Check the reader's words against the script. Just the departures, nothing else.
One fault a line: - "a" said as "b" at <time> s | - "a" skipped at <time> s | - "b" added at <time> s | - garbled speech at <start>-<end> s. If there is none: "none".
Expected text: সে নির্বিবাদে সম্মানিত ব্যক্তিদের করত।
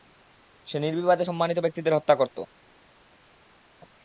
- "হত্যা" added at 2.0 s